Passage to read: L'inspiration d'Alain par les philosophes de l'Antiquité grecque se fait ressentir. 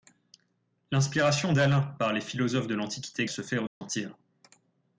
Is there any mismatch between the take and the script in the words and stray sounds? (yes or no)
yes